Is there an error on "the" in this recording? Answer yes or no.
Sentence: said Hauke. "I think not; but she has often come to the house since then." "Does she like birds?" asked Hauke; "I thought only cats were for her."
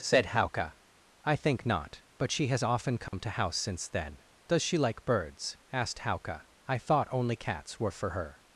yes